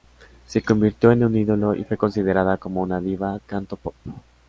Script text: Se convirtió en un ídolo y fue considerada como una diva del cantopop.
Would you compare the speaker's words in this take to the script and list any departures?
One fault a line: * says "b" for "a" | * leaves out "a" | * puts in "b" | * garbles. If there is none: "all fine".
* leaves out "del"